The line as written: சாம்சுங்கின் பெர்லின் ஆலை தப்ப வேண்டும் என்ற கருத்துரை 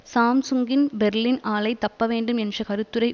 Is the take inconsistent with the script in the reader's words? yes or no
no